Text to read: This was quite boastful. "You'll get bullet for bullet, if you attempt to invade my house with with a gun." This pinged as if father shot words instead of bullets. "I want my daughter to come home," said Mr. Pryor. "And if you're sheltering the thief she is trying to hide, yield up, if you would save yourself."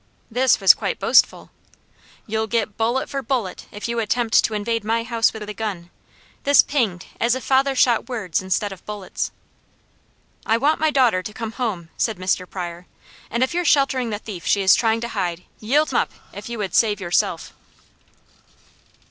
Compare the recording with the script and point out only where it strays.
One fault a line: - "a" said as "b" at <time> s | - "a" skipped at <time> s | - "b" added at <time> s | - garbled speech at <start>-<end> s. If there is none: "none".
none